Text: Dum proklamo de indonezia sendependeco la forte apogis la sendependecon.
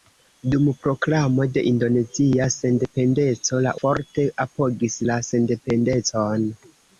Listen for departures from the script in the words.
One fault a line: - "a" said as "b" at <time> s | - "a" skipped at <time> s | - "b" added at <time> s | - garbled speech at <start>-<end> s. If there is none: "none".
none